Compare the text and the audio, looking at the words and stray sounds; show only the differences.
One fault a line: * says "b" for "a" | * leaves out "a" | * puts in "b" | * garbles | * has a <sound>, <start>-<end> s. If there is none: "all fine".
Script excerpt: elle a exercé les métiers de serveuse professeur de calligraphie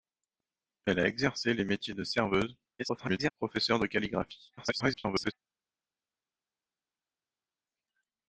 * garbles
* garbles